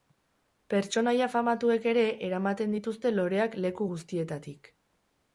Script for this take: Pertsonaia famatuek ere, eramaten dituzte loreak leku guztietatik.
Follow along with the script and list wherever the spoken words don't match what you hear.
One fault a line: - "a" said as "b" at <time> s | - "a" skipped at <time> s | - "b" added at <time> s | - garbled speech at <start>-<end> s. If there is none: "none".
none